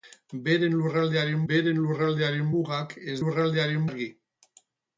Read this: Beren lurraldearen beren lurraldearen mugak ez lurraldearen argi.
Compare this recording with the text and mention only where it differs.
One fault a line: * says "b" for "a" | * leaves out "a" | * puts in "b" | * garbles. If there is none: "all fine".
all fine